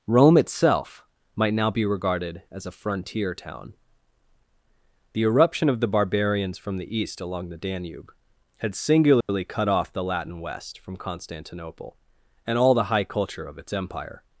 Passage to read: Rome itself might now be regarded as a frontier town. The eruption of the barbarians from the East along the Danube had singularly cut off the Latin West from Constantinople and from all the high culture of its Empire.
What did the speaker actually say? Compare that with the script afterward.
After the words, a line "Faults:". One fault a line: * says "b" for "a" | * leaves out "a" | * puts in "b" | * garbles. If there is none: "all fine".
Rome itself might now be regarded as a frontier town. The eruption of the barbarians from the East along the Danube had singularly cut off the Latin West from Constantinople and all the high culture of its Empire.
Faults:
* leaves out "from"